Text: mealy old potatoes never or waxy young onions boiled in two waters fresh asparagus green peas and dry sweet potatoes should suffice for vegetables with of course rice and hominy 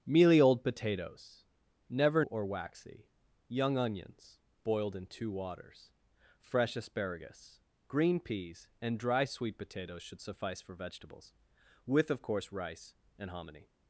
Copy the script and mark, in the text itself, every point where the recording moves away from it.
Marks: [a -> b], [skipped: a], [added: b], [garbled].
mealy old potatoes never or waxy young onions boiled in two waters fresh asparagus green peas and dry sweet potatoes should suffice for vegetables with of course rice and hominy